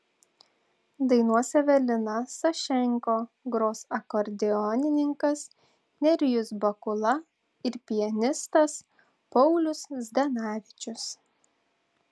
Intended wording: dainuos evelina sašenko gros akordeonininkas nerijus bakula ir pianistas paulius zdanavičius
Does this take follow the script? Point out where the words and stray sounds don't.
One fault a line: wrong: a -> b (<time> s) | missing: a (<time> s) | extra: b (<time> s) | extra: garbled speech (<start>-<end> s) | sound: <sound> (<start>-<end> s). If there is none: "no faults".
no faults